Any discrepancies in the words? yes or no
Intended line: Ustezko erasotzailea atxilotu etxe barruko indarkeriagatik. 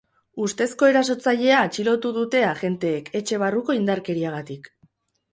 yes